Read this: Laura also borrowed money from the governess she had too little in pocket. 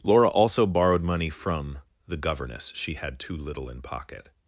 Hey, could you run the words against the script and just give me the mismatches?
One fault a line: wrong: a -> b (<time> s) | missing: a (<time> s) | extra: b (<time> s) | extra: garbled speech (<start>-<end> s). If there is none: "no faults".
no faults